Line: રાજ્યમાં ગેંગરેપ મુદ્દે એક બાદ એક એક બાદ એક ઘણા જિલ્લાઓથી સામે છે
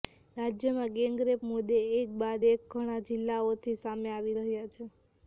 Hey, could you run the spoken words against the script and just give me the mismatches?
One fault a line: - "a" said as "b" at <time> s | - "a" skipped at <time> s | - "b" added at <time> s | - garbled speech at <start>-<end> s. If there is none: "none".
- "એક બાદ એક" skipped at 2.6 s
- "આવી રહ્યા" added at 4.1 s